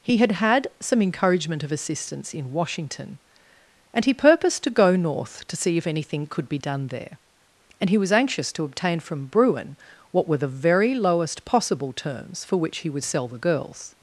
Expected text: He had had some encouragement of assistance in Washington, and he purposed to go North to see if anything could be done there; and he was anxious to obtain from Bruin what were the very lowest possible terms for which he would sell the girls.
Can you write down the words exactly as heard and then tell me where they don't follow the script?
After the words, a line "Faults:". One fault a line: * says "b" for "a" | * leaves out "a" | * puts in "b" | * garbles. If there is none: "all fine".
He had had some encouragement of assistance in Washington, and he purposed to go North to see if anything could be done there; and he was anxious to obtain from Bruin what were the very lowest possible terms for which he would sell the girls.
Faults:
all fine